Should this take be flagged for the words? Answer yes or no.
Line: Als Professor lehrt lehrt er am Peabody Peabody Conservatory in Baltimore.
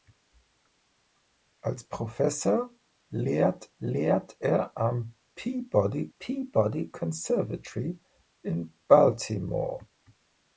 no